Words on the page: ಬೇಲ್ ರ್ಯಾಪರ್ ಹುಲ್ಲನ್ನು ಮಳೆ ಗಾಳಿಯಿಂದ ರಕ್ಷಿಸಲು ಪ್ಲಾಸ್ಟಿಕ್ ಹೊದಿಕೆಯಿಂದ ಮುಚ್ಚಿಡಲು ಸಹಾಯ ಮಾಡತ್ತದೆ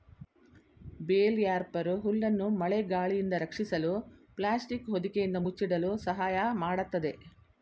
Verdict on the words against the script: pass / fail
pass